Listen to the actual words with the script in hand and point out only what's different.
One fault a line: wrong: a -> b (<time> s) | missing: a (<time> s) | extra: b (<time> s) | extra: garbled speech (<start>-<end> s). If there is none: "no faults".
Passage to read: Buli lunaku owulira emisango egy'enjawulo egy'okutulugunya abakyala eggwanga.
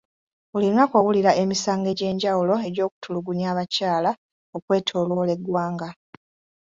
extra: okwetooloola (4.6 s)